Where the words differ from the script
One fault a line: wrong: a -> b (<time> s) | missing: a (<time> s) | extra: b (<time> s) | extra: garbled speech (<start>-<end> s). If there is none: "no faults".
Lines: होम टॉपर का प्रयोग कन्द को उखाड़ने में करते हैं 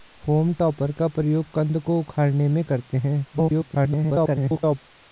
extra: garbled speech (3.3-4.8 s)